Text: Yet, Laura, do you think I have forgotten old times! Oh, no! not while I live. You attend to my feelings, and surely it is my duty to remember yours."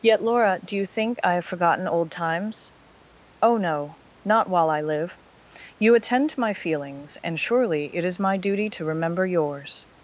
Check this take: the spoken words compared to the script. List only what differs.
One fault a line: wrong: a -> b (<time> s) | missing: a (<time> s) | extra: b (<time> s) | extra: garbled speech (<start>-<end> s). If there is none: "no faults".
no faults